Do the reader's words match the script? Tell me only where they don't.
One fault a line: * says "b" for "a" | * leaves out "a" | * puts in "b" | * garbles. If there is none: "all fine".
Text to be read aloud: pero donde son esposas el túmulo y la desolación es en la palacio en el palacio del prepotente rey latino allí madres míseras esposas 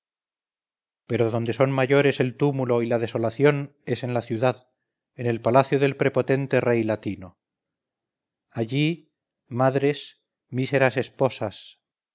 * says "mayores" for "esposas"
* says "ciudad" for "palacio"